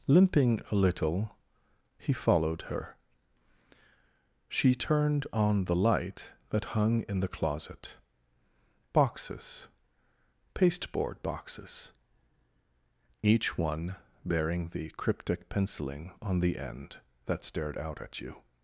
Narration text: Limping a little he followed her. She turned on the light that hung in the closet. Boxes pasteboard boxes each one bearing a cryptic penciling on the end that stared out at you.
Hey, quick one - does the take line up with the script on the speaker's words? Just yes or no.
no